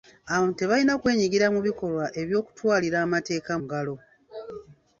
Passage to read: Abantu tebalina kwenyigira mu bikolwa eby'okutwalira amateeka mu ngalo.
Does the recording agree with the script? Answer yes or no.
no